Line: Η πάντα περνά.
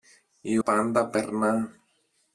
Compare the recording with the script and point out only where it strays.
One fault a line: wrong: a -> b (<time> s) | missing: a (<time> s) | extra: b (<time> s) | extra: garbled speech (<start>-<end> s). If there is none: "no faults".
no faults